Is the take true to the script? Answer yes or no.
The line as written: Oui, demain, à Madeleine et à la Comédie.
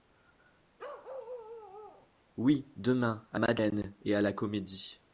yes